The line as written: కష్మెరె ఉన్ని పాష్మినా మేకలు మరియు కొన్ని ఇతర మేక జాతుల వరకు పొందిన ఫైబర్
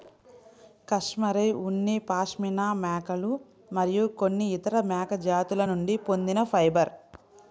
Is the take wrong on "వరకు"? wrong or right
wrong